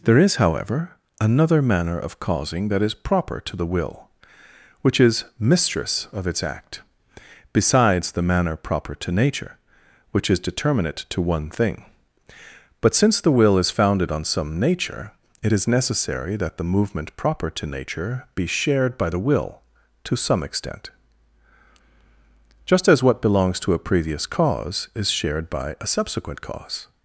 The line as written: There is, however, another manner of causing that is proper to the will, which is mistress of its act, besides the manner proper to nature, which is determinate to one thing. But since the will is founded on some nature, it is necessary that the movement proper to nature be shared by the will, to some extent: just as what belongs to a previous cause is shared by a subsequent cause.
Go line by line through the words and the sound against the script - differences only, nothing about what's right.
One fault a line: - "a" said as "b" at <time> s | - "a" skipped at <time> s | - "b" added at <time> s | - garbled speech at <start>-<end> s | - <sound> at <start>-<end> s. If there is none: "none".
none